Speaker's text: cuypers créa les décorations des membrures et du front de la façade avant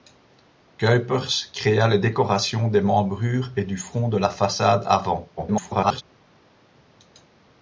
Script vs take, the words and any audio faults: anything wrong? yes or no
yes